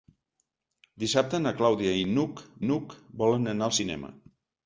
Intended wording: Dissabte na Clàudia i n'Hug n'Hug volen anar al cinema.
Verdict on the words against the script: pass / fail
pass